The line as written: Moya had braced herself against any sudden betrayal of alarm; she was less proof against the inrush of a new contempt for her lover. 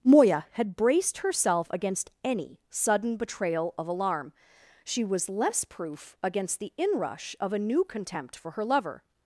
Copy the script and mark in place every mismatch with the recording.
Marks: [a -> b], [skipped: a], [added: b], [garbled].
Moya had braced herself against any sudden betrayal of alarm; she was less proof against the inrush of a new contempt for her lover.